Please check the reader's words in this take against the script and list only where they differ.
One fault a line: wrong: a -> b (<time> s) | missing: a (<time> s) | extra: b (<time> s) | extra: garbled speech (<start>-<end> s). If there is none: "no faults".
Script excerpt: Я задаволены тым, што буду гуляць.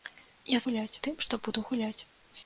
wrong: задаволены -> гуляць (0.6 s)